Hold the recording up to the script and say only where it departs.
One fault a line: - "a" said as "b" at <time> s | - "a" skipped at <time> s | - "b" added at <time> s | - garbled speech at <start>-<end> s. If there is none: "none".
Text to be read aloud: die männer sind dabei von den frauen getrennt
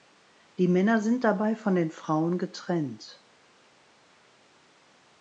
none